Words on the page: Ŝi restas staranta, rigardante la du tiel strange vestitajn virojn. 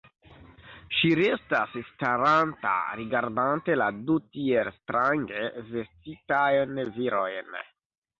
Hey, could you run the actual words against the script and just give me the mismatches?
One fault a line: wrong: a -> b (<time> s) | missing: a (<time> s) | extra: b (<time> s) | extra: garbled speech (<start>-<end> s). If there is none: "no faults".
no faults